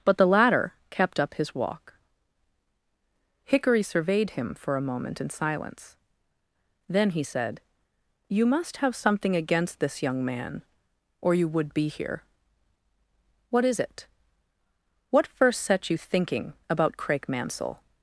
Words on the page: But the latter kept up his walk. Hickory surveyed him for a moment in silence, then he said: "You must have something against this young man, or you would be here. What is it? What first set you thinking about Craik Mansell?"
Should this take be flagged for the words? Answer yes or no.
no